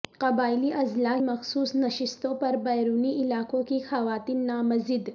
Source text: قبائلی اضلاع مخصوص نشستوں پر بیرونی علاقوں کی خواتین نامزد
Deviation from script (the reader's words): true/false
false